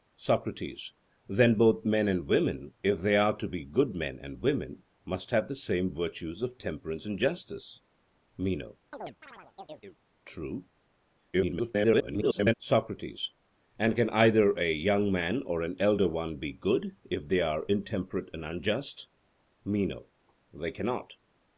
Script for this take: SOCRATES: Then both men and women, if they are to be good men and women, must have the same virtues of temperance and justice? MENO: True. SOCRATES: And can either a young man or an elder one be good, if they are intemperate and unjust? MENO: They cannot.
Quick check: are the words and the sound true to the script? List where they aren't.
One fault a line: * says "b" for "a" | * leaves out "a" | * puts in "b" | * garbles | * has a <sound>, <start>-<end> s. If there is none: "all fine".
* has a chirp, 8.9-10.0 s
* garbles